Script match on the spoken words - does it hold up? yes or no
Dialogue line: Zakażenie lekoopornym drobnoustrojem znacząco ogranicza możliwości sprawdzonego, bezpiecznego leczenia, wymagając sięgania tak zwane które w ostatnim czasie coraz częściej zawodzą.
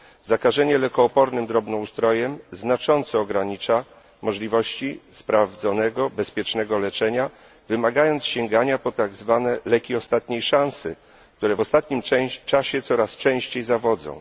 no